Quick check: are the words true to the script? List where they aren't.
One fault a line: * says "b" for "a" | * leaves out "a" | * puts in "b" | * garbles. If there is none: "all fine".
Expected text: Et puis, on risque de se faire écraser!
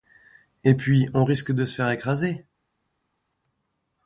all fine